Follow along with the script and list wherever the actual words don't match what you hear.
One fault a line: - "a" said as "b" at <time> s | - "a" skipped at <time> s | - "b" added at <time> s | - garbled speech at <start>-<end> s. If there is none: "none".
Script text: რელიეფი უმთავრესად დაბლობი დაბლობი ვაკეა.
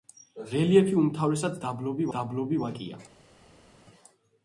none